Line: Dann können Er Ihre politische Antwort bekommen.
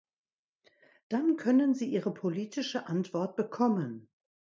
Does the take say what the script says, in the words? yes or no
no